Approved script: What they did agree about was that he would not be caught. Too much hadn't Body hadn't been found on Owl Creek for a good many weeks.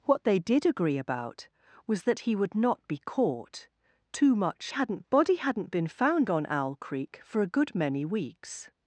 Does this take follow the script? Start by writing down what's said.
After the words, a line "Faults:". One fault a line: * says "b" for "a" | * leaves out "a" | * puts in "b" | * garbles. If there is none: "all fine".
What they did agree about was that he would not be caught. Too much hadn't Body hadn't been found on Owl Creek for a good many weeks.
Faults:
all fine